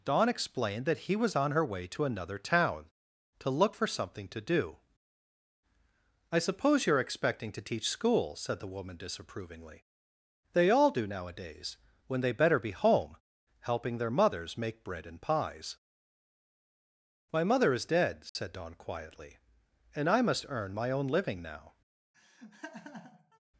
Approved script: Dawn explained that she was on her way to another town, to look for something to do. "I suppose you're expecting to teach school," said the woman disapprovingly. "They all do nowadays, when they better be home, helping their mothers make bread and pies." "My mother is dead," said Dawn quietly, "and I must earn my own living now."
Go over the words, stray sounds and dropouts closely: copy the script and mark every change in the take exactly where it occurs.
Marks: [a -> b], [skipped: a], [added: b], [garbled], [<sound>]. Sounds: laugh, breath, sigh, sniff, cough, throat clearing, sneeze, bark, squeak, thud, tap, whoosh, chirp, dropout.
Dawn explained that [she -> he] was on her way to another town, to look for something to do. "I suppose you're expecting to teach school," said the woman disapprovingly. "They all do nowadays, when they better be home, helping their mothers make bread and pies." "My mother is dead," said [dropout] Dawn quietly, "and I must earn my own living now." [laugh]